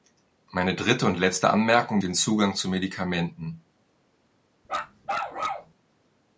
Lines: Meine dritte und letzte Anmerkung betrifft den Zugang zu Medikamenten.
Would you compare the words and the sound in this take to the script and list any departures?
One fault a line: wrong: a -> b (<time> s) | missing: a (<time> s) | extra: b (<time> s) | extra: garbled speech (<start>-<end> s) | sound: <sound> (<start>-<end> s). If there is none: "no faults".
missing: betrifft (2.0 s)
sound: bark (4.6-5.7 s)